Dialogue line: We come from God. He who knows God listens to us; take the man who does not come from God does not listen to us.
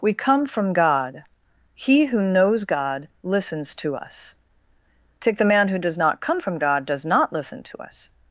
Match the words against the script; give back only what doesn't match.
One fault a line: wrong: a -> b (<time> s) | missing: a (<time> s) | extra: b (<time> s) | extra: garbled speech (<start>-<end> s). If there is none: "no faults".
no faults